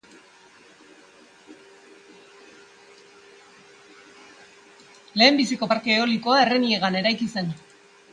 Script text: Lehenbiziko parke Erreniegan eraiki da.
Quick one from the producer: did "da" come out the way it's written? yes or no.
no